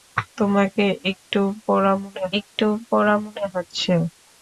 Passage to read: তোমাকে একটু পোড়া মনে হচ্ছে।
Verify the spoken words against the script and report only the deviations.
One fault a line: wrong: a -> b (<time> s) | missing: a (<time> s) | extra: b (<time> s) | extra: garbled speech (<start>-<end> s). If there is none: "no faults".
extra: একটু পোড়া মনে (2.4 s)